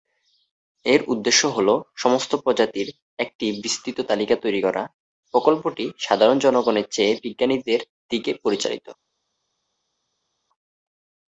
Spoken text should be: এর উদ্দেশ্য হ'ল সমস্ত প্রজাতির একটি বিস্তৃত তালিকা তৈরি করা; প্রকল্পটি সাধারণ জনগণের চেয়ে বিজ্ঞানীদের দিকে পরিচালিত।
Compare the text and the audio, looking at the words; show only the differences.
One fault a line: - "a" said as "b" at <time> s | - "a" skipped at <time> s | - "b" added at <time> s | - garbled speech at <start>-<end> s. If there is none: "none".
none